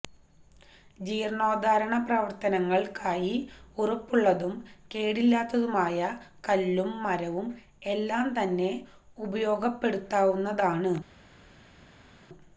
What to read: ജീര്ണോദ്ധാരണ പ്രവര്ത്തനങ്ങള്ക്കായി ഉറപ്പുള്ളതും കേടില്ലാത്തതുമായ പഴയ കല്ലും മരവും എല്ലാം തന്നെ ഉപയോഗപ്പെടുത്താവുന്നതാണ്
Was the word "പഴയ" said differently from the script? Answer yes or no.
yes